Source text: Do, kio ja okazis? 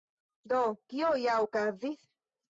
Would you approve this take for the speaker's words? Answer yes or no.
yes